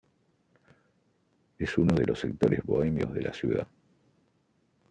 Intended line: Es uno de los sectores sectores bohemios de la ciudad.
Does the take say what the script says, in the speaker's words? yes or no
no